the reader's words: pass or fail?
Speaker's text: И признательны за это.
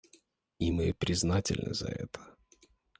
fail